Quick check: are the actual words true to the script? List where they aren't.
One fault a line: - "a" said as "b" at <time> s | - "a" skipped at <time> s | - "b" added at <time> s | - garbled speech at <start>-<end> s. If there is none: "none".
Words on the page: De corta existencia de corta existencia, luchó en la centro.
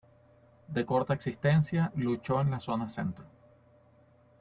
- "de corta existencia" skipped at 1.9 s
- "zona" added at 2.6 s